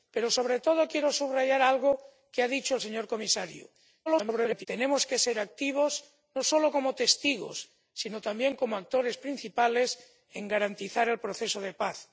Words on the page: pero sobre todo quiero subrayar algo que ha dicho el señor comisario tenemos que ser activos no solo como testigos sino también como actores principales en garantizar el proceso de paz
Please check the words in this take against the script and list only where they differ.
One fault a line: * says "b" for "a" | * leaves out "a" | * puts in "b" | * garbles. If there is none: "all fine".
* garbles